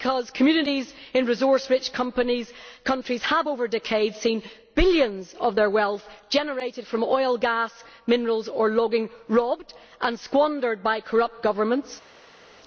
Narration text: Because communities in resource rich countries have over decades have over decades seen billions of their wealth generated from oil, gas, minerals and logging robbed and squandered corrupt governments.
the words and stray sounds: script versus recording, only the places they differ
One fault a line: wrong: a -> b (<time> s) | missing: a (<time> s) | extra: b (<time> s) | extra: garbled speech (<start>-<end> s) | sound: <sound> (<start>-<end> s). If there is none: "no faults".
missing: have over decades (4.2 s)
wrong: and -> or (8.5 s)
extra: by (10.8 s)